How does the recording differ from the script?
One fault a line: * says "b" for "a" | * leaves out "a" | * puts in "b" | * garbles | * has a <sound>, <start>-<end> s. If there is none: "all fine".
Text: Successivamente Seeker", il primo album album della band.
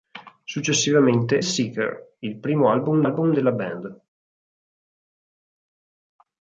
all fine